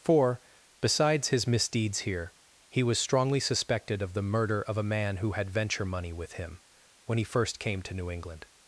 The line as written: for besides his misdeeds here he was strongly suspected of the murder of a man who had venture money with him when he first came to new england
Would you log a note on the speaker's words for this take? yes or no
no